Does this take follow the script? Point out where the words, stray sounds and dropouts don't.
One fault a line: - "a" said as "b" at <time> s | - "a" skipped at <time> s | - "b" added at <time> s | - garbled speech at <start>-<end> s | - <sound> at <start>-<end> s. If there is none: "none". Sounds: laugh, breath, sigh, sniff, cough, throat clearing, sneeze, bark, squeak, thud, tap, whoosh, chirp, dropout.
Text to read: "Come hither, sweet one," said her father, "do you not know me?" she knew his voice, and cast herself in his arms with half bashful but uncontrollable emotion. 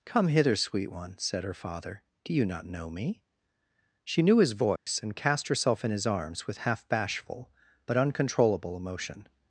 - dropout at 4.8-4.9 s